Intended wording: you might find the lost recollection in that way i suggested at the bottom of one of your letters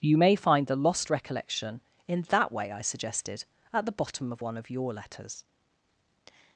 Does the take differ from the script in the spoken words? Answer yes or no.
yes